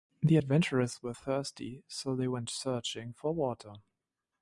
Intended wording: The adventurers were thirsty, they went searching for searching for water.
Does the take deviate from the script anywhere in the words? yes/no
yes